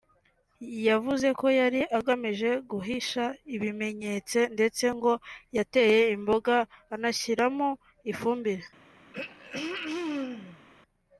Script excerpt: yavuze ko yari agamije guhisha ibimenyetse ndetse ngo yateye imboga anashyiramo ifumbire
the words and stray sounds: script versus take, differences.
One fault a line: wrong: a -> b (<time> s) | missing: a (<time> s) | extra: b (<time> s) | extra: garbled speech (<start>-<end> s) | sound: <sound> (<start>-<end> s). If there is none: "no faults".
sound: throat clearing (9.1-10.6 s)